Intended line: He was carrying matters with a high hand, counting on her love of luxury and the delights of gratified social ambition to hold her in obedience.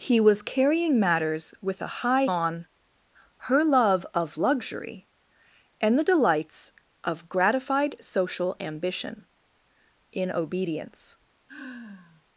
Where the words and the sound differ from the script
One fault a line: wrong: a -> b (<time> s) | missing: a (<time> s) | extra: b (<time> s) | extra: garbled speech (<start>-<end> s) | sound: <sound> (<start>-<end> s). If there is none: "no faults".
missing: hand counting (2.2 s)
missing: to hold her (9.3 s)
sound: sigh (11.5-12.2 s)